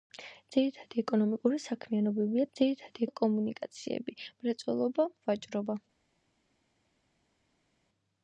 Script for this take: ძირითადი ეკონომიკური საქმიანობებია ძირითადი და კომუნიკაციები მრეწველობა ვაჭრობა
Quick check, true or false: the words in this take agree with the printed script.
true